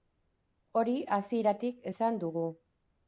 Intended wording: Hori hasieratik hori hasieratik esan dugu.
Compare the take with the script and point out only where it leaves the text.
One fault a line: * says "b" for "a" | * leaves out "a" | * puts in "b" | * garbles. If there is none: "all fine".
* leaves out "hori hasieratik"